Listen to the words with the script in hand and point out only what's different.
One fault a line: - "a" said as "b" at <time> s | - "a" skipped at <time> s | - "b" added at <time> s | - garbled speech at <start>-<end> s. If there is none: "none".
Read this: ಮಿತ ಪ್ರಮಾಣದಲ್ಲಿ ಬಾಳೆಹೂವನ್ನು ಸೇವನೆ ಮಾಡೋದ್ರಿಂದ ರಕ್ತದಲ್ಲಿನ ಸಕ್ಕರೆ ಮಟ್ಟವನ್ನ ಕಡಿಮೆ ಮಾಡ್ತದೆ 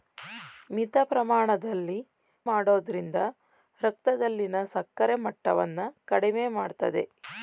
- "ಬಾಳೆಹೂವನ್ನು ಸೇವನೆ" skipped at 2.0 s